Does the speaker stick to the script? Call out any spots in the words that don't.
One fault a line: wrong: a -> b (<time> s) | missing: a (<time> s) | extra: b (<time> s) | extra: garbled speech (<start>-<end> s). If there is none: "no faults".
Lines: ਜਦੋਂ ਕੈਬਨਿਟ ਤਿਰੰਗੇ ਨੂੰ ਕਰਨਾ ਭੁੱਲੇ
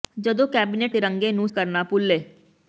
no faults